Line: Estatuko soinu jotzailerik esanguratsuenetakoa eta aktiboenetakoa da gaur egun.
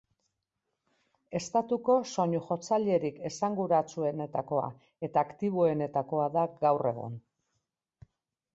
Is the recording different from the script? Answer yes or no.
no